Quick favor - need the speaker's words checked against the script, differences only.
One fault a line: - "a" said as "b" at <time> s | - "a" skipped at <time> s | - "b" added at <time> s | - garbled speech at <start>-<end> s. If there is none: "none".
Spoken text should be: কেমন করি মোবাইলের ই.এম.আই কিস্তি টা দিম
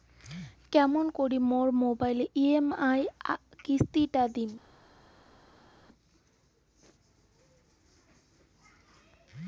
- "মোর" added at 1.5 s